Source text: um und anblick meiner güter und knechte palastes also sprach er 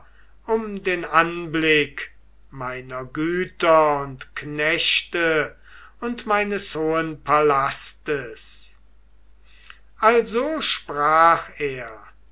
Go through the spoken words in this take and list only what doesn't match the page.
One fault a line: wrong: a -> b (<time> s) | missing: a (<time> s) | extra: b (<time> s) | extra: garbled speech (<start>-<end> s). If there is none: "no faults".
wrong: und -> den (0.8 s)
extra: und meines hohen (6.0 s)